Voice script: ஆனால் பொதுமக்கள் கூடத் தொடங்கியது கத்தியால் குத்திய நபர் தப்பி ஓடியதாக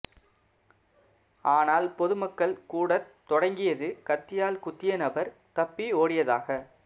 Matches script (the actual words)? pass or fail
pass